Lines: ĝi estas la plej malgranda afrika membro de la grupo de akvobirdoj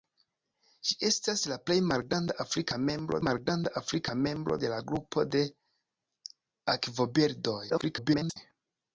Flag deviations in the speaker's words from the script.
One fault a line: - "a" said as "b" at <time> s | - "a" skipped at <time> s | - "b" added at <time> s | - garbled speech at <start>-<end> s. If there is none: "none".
- "malgranda afrika membro" added at 3.2 s
- garbled speech at 7.7-8.4 s